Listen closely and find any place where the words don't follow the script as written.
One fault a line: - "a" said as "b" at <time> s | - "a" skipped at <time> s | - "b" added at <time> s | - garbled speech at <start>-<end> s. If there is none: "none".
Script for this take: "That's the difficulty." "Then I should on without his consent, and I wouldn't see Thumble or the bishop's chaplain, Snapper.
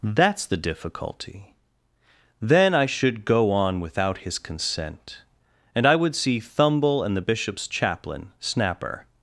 - "go" added at 3.2 s
- "wouldn't" said as "would" at 6.0 s
- "or" said as "and" at 7.0 s